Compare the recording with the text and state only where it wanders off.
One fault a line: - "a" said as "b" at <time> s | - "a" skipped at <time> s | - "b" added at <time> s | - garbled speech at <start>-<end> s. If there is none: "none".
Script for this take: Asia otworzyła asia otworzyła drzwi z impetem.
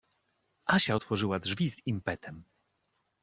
- "asia otworzyła" skipped at 1.4 s